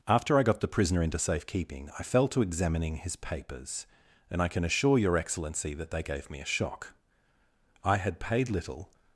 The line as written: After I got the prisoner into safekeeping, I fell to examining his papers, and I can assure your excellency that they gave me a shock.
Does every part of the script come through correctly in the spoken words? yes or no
no